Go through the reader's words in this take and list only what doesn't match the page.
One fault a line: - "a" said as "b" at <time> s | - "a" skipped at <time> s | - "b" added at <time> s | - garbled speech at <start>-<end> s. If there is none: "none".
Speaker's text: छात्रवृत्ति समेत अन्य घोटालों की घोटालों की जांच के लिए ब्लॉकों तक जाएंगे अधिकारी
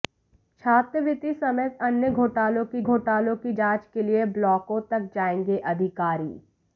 none